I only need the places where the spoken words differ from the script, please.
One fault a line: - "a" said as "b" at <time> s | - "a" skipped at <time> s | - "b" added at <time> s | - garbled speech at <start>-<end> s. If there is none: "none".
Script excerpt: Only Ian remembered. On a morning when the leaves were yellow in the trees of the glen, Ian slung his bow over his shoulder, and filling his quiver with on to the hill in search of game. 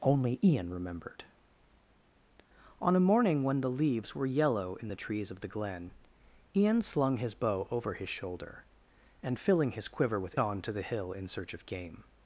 none